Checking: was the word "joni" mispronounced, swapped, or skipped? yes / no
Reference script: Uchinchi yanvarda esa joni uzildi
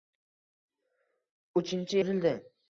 yes